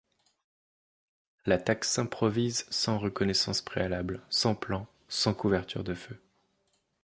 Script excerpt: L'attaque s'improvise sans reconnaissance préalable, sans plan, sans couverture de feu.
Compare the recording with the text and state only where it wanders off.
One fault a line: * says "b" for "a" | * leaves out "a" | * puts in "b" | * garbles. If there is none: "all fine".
all fine